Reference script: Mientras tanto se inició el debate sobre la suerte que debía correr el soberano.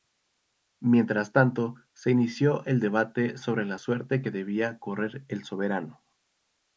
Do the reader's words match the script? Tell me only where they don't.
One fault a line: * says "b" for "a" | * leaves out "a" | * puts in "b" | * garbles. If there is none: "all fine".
all fine